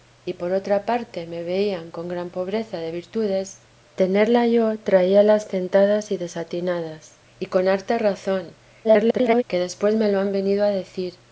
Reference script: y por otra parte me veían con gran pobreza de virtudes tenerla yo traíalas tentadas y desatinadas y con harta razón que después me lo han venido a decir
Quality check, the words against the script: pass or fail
fail